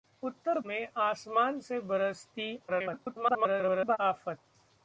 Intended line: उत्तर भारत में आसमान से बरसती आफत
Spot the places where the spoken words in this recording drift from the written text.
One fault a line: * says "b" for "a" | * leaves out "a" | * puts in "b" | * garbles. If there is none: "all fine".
* leaves out "भारत"
* garbles